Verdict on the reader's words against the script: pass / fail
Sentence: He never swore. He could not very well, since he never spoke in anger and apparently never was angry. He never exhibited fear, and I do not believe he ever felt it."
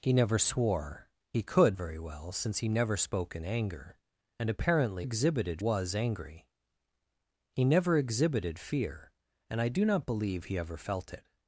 fail